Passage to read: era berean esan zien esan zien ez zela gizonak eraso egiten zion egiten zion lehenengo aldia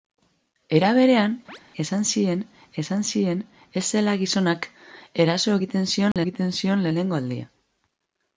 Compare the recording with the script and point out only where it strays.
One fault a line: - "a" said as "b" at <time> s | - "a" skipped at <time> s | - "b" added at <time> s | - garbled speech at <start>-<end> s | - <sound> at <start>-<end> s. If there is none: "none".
- chirp at 1.5-1.6 s
- dropout at 6.1-6.2 s